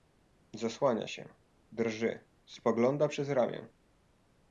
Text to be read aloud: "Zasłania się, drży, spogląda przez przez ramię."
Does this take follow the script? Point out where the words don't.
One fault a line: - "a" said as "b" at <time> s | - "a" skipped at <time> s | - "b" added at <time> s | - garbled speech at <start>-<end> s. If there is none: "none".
- "przez" skipped at 3.3 s